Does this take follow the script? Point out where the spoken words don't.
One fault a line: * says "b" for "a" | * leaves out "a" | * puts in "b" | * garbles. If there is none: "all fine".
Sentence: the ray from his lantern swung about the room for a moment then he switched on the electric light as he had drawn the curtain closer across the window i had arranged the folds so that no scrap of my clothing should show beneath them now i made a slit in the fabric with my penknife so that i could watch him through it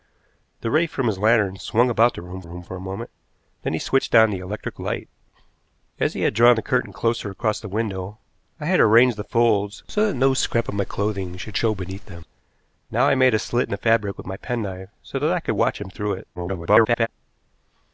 * puts in "room"
* garbles